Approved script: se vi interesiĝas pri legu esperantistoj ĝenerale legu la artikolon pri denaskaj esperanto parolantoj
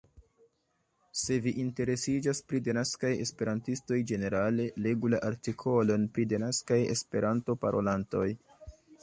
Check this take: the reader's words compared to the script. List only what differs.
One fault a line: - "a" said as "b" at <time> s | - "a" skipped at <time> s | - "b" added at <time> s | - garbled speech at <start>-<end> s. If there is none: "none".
- "legu" said as "denaskaj" at 2.7 s